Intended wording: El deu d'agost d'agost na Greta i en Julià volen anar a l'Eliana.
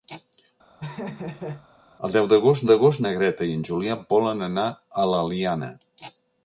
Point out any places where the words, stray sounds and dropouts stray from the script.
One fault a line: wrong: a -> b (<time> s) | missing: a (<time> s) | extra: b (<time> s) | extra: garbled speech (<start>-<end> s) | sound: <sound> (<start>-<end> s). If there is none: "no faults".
sound: laugh (0.8-1.7 s)